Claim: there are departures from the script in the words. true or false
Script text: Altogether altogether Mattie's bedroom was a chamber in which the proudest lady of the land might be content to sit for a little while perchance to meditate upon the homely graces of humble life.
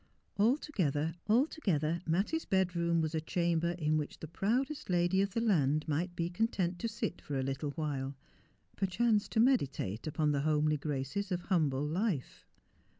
false